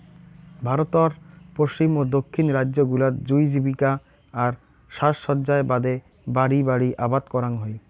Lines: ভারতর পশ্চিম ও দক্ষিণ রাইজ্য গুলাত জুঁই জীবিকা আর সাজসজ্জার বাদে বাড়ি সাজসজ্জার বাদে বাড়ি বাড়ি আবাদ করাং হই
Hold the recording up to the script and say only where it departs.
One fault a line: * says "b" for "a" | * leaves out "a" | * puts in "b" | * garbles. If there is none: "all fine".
* leaves out "সাজসজ্জার বাদে বাড়ি"